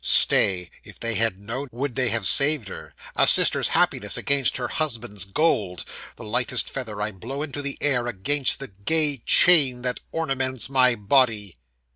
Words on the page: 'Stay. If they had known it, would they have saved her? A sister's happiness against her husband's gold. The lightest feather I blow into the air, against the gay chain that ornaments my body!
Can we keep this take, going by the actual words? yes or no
no